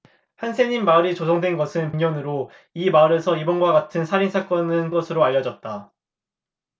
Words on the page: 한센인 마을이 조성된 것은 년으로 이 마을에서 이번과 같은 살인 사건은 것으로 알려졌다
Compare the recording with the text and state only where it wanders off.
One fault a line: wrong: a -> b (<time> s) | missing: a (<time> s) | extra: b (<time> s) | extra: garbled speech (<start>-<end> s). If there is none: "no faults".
no faults